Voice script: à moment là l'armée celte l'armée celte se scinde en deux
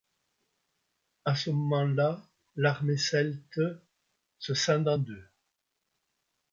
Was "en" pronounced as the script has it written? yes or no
yes